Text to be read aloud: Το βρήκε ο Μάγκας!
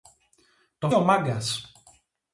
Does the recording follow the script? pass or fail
fail